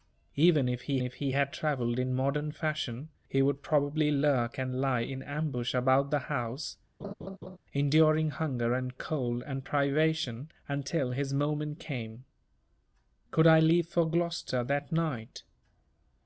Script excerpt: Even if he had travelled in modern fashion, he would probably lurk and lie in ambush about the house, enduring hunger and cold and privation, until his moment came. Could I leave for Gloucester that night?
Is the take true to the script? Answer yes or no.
no